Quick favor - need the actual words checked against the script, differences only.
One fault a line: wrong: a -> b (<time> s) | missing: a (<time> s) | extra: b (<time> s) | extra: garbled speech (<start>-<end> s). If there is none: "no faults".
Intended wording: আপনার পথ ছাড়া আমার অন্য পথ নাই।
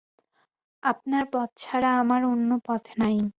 no faults